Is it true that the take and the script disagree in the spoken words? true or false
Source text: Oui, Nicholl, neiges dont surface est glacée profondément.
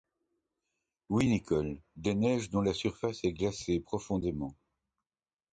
true